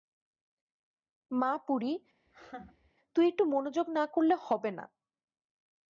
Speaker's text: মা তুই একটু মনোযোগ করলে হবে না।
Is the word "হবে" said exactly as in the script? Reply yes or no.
yes